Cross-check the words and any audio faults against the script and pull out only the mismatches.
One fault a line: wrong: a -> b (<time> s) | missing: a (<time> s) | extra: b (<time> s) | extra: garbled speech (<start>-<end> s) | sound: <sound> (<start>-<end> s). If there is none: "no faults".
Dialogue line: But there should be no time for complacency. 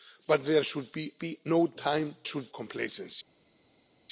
extra: be (1.2 s)
wrong: for -> should (2.2 s)